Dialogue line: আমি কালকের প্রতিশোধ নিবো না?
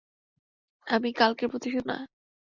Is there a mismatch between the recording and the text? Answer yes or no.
yes